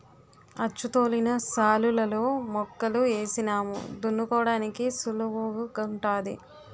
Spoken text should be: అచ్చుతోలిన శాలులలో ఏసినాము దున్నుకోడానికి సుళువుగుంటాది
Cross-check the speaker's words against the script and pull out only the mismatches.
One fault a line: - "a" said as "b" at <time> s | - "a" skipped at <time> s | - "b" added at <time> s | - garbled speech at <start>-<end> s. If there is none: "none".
- "మొక్కలు" added at 2.5 s